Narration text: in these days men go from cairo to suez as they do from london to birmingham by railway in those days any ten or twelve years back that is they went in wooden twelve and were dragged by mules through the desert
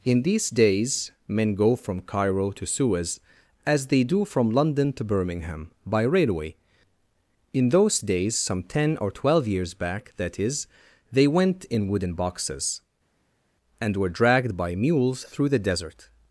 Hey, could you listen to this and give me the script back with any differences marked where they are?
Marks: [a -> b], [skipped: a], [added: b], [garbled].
in these days men go from cairo to suez as they do from london to birmingham by railway in those days [any -> some] ten or twelve years back that is they went in wooden [twelve -> boxes] and were dragged by mules through the desert